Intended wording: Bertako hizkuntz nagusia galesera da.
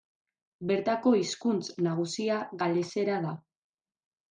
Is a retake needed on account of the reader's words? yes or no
no